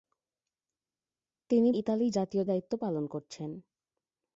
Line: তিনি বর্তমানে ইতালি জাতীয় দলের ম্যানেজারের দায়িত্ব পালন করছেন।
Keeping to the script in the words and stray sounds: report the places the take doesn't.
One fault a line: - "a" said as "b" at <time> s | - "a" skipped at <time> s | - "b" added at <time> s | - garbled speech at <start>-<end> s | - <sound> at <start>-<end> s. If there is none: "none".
- "বর্তমানে" skipped at 1.7 s
- "দলের ম্যানেজারের" skipped at 2.4 s